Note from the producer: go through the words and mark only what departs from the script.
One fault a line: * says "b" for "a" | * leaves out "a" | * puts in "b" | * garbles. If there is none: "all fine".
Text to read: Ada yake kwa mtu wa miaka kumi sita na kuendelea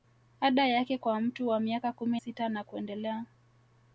all fine